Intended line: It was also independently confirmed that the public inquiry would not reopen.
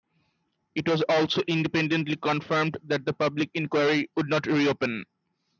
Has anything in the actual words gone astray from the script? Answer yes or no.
no